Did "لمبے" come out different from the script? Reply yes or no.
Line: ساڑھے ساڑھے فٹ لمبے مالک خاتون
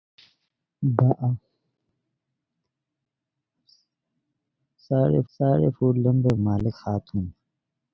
no